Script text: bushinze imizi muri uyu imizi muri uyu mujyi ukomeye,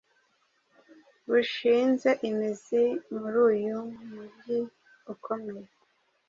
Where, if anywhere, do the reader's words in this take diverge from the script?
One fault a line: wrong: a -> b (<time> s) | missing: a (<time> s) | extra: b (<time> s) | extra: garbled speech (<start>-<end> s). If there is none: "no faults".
missing: imizi muri uyu (3.8 s)